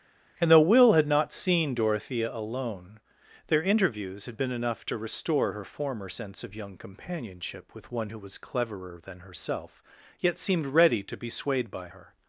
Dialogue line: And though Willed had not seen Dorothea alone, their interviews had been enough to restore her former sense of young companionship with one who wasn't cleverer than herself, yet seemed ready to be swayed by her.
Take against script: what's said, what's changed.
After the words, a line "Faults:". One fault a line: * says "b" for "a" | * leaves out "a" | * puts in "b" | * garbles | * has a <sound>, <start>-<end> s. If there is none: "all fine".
And though Will had not seen Dorothea alone, their interviews had been enough to restore her former sense of young companionship with one who was cleverer than herself, yet seemed ready to be swayed by her.
Faults:
* says "Will" for "Willed"
* says "was" for "wasn't"